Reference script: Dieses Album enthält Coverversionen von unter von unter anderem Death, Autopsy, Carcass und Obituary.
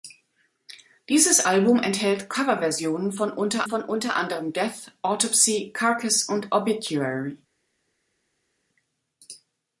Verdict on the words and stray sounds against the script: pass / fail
pass